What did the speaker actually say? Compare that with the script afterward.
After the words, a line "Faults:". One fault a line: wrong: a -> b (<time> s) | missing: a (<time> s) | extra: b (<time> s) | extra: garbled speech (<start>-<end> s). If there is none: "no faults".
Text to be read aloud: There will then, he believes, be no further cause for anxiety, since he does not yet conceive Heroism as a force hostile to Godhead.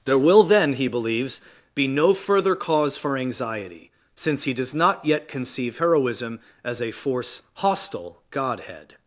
There will then, he believes, be no further cause for anxiety, since he does not yet conceive Heroism as a force hostile Godhead.
Faults:
missing: to (8.2 s)